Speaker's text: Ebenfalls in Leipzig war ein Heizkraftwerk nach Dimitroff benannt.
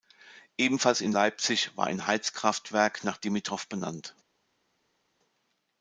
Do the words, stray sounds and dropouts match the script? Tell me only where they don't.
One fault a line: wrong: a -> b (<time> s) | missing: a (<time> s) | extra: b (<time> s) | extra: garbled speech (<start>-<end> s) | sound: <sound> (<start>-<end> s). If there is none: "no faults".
no faults